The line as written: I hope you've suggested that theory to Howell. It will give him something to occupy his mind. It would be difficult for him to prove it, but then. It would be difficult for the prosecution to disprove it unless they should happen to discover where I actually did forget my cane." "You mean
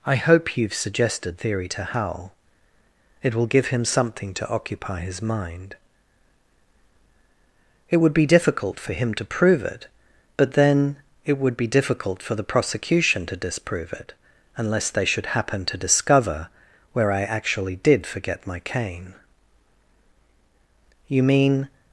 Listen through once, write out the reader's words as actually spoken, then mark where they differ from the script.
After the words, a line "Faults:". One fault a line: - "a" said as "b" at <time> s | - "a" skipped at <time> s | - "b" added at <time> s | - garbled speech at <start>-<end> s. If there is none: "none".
I hope you've suggested theory to Howell. It will give him something to occupy his mind. It would be difficult for him to prove it, but then. It would be difficult for the prosecution to disprove it unless they should happen to discover where I actually did forget my cane." "You mean
Faults:
- "that" skipped at 1.4 s